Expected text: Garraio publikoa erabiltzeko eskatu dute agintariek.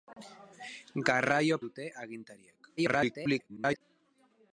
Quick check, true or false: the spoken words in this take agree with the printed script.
false